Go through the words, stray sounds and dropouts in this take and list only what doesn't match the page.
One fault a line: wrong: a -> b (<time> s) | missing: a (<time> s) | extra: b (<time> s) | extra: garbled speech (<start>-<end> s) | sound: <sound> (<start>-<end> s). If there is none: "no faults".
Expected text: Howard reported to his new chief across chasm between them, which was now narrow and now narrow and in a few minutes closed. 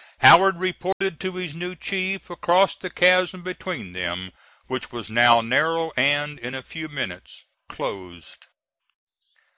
sound: dropout (0.9-1.0 s)
extra: the (2.8 s)
missing: now narrow and (6.4 s)